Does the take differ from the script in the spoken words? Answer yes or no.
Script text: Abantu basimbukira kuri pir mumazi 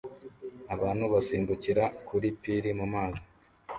no